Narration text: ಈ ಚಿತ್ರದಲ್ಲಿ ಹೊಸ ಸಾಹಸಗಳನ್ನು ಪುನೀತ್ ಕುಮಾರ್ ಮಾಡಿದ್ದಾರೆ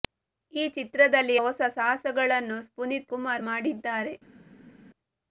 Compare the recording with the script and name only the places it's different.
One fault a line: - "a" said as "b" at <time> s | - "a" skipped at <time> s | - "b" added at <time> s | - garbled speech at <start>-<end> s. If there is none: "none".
none